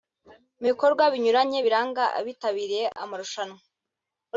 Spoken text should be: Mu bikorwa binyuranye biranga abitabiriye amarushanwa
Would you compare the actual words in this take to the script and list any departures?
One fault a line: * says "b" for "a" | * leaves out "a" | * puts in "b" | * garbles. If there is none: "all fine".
all fine